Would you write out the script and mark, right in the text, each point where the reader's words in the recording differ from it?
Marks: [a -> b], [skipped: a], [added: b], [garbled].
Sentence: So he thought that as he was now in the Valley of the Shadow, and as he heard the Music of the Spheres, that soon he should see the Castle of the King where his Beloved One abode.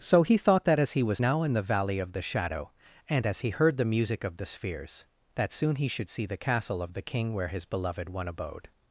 So he thought that as he was now in the Valley of the Shadow, and as he heard the Music of the Spheres, that soon he should see the Castle of the King where his Beloved One abode.